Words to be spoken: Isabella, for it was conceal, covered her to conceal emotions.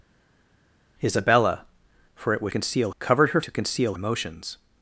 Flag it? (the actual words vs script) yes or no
no